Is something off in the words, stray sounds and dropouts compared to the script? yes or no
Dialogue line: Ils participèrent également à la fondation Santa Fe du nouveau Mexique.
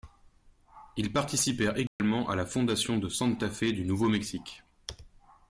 yes